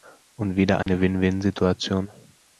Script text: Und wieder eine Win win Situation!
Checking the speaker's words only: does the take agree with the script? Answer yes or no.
yes